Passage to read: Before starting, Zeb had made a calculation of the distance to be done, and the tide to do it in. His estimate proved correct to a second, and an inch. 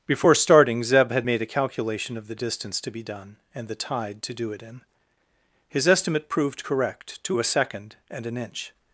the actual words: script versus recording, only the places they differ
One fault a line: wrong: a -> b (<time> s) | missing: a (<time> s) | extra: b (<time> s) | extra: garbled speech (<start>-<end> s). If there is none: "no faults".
no faults